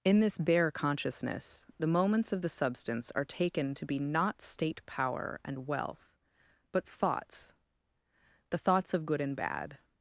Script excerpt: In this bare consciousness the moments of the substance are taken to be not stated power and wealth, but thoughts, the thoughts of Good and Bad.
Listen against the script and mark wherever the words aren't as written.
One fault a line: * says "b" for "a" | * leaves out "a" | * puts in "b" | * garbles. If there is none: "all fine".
* says "state" for "stated"